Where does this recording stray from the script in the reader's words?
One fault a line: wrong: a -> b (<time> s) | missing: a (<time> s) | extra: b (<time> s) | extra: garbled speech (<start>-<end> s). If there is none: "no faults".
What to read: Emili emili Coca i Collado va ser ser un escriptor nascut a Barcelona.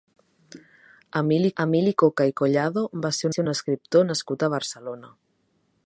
no faults